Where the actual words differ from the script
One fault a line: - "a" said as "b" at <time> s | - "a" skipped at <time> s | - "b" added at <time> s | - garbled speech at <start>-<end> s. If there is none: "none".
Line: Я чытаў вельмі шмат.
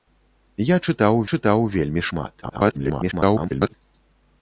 - "чытаў" added at 1.3 s
- garbled speech at 2.4-3.7 s